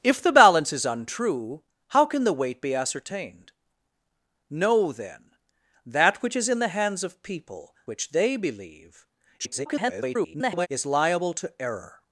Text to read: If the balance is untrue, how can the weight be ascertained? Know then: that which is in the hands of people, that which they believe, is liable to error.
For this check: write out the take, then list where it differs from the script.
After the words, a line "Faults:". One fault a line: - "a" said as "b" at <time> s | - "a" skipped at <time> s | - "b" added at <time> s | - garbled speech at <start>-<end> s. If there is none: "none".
If the balance is untrue, how can the weight be ascertained? Know then: that which is in the hands of people, which they believe, [garbled] is liable to error.
Faults:
- "that" skipped at 7.8 s
- garbled speech at 9.4-10.7 s